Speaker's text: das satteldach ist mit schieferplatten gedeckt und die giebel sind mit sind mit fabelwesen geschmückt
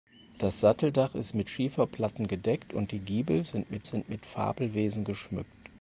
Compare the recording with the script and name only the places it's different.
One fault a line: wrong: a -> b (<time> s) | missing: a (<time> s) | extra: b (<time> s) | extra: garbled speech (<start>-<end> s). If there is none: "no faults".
no faults